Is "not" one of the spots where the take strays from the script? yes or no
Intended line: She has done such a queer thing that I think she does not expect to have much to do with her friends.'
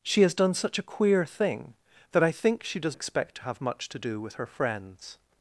yes